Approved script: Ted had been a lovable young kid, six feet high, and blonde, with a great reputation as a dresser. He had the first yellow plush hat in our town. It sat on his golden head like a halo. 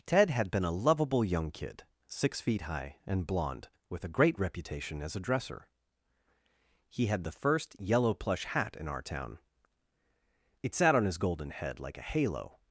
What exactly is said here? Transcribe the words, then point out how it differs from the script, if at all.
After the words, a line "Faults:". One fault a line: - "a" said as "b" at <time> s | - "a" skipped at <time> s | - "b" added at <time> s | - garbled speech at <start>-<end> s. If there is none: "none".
Ted had been a lovable young kid, six feet high, and blonde, with a great reputation as a dresser. He had the first yellow plush hat in our town. It sat on his golden head like a halo.
Faults:
none